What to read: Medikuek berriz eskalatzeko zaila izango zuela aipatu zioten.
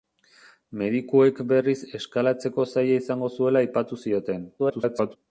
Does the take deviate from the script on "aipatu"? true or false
false